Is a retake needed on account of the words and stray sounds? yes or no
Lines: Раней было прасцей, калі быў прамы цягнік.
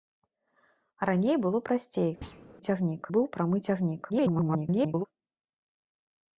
yes